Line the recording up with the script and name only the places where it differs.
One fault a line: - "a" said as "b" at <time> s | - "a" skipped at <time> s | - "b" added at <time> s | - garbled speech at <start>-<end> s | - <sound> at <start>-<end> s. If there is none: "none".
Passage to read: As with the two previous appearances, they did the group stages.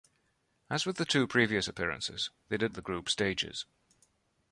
none